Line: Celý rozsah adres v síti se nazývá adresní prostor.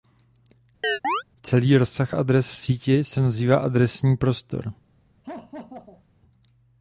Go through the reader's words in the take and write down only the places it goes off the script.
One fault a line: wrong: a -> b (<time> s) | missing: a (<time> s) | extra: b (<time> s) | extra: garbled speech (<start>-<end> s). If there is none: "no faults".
no faults